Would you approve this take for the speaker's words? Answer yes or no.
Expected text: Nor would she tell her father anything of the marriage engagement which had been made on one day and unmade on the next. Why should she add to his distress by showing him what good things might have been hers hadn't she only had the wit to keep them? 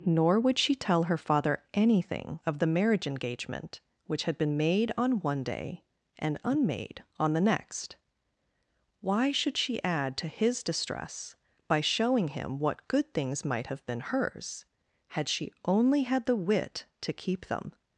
no